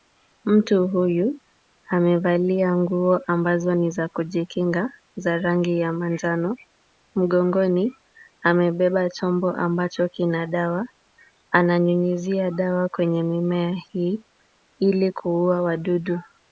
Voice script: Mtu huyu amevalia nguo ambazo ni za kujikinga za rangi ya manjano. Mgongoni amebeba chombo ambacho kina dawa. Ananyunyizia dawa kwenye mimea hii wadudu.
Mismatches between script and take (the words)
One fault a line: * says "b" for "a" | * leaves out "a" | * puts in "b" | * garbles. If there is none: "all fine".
* puts in "ili kuua"